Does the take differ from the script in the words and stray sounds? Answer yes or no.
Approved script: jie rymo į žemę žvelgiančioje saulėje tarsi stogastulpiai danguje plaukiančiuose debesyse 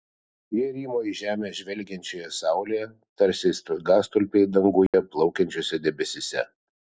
yes